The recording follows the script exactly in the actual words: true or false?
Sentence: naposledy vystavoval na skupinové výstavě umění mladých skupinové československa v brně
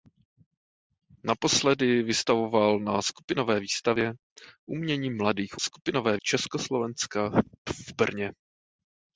true